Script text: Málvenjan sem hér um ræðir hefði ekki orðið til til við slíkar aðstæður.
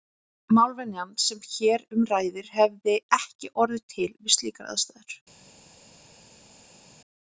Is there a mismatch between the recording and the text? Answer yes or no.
yes